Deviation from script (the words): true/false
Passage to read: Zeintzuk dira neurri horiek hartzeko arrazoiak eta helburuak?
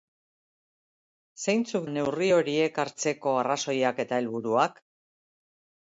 true